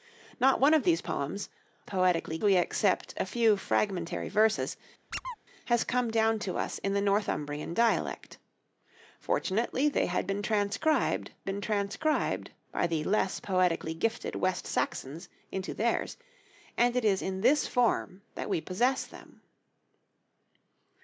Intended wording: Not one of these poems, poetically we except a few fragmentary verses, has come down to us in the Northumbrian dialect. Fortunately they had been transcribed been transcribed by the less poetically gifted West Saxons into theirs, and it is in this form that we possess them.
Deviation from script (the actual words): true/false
false